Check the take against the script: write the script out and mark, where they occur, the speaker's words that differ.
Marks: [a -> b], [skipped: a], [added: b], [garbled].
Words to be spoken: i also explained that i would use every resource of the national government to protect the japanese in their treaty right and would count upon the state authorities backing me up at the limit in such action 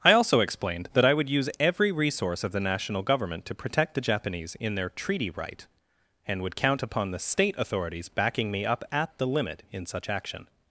i also explained that i would use every resource of the national government to protect the japanese in their treaty right and would count upon the state authorities backing me up at the limit in such action